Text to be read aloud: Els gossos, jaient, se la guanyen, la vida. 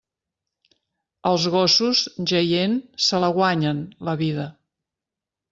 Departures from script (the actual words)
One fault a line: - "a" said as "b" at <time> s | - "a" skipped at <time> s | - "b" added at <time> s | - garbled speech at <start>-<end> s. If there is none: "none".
none